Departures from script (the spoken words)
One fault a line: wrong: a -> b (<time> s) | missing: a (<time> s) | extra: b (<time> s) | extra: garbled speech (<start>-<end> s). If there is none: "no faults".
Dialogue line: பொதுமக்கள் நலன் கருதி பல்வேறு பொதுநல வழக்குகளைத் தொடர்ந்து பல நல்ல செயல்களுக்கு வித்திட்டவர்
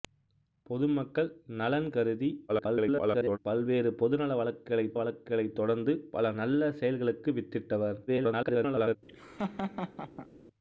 extra: garbled speech (2.5-3.4 s)
extra: வழக்குகளைத் (5.0 s)
extra: garbled speech (8.1-9.0 s)